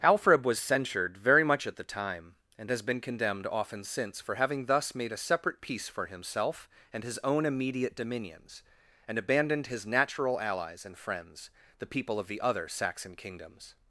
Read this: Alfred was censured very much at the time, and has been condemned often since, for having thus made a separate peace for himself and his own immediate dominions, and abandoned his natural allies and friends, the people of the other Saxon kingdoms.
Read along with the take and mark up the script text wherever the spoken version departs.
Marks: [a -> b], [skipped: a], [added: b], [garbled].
Alfred was censured very much at the time, and has been condemned often since, for having thus made a separate peace for himself and his own immediate dominions, and abandoned his natural allies and friends, the people of the other Saxon kingdoms.